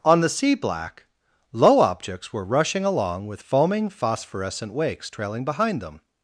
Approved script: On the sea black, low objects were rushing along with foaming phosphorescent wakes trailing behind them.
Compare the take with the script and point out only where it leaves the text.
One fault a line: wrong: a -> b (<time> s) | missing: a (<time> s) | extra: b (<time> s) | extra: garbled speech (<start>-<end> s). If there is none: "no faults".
no faults